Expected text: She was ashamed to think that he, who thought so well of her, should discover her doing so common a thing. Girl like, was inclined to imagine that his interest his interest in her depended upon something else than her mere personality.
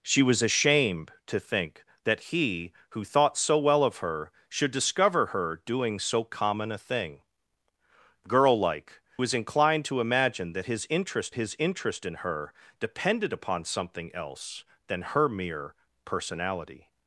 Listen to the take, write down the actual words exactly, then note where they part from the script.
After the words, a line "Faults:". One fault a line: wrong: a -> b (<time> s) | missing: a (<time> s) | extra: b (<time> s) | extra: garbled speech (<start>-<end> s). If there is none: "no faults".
She was ashamed to think that he, who thought so well of her, should discover her doing so common a thing. Girl like, was inclined to imagine that his interest his interest in her depended upon something else than her mere personality.
Faults:
no faults